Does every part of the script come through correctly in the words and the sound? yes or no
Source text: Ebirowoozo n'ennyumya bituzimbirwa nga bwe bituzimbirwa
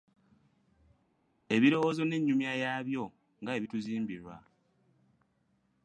no